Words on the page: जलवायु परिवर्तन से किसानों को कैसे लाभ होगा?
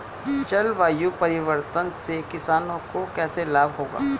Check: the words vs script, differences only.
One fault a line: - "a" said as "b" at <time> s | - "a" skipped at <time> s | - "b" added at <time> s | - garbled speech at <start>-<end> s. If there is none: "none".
none